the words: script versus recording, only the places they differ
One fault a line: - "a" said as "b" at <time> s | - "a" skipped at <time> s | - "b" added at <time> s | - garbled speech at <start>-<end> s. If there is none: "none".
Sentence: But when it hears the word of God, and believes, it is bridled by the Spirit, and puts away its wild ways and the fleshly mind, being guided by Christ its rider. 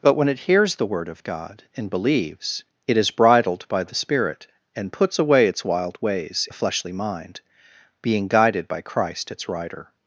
- "and" skipped at 6.5 s